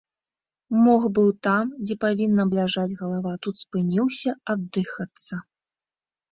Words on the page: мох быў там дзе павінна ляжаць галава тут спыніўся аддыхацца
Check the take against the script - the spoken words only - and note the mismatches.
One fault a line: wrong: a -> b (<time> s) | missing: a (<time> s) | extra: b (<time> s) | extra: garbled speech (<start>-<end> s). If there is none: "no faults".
no faults